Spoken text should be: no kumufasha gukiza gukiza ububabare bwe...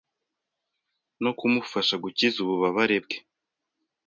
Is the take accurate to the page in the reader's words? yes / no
no